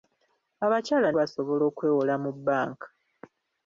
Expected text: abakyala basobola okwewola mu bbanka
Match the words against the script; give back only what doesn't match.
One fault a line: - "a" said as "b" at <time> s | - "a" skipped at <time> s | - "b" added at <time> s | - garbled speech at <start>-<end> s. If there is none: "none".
none